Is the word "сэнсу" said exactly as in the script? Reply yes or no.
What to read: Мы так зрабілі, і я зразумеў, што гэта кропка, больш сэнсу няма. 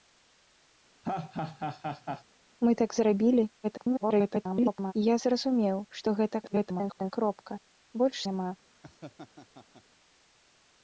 no